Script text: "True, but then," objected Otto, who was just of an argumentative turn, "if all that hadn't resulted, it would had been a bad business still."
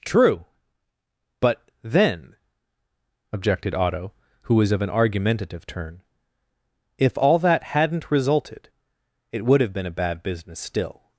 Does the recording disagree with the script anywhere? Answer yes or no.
yes